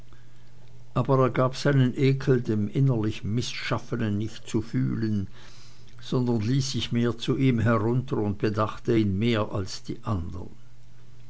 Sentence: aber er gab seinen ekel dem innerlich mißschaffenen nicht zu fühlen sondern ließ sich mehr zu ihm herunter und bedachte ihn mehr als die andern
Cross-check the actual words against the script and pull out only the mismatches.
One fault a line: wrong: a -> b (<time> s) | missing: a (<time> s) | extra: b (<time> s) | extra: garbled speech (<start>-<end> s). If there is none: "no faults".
no faults